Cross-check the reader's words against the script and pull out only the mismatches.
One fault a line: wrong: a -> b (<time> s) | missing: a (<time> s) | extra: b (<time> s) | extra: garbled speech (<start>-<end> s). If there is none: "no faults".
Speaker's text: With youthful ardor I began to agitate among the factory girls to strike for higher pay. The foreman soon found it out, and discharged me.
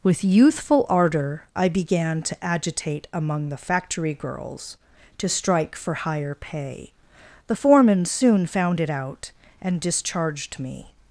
no faults